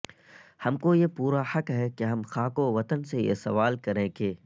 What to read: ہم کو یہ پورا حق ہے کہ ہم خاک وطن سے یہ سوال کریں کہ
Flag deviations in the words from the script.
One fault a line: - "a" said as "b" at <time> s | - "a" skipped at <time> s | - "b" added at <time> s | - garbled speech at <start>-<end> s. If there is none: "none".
none